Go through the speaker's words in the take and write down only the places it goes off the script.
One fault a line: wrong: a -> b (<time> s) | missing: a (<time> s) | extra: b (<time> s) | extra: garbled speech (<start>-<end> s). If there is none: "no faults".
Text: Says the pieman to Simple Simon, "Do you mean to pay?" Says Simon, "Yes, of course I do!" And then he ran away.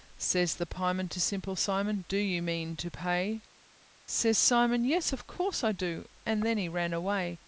no faults